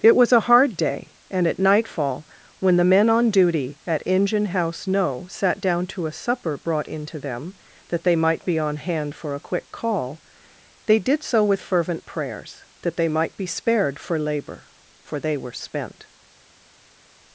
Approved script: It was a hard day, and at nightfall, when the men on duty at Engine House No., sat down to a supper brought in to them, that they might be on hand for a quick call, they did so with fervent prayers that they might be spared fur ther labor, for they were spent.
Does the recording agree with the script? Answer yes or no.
no